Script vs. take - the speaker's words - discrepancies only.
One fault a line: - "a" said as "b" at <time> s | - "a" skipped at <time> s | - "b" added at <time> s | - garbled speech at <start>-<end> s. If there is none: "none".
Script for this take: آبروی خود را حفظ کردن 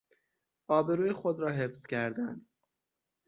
none